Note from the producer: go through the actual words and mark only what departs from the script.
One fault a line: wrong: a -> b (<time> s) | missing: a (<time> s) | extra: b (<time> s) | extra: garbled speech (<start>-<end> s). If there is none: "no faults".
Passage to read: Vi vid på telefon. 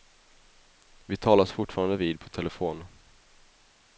extra: talas fortfarande (1.2 s)